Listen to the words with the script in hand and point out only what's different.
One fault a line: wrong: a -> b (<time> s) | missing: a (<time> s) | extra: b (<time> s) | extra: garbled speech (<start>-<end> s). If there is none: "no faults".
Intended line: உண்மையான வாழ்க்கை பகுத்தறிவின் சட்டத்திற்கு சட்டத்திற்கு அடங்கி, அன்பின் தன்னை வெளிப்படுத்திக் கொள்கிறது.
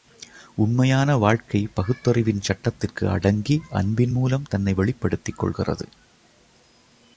missing: சட்டத்திற்கு (3.1 s)
extra: மூலம் (4.1 s)